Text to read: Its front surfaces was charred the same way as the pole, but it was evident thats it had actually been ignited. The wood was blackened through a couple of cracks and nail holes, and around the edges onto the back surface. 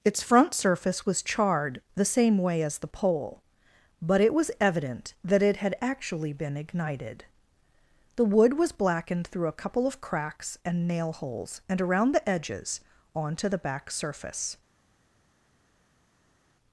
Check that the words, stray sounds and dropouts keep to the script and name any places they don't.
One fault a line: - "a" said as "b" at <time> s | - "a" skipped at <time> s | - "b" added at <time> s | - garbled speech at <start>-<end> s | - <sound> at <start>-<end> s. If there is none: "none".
- "surfaces" said as "surface" at 0.5 s
- "thats" said as "that" at 5.2 s